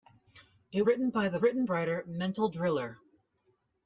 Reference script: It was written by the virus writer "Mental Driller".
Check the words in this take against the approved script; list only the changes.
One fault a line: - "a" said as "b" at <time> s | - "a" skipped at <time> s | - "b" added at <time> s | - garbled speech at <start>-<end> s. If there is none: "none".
- "was" skipped at 0.8 s
- "virus" said as "written" at 1.4 s